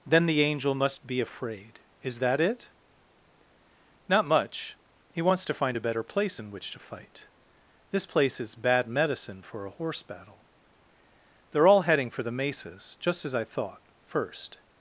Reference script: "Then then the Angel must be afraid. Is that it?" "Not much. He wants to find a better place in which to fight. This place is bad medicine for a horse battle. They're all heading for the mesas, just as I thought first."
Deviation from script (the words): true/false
true